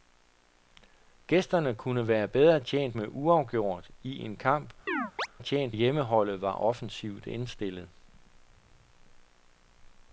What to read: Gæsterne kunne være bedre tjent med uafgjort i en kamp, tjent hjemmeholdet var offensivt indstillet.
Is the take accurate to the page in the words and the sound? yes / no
no